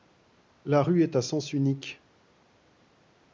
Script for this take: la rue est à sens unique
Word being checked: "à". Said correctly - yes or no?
yes